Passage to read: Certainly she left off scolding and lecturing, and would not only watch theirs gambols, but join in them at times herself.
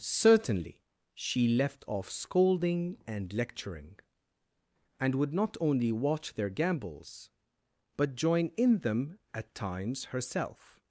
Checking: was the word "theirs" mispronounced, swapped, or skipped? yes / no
yes